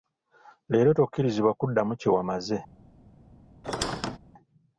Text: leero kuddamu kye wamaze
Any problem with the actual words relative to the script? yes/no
yes